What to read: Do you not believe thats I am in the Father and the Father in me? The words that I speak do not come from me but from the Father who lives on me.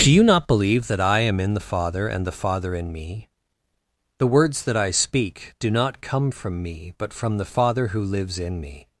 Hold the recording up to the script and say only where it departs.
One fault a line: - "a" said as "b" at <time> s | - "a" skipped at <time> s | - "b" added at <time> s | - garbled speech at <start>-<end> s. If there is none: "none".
- "thats" said as "that" at 0.9 s
- "on" said as "in" at 8.4 s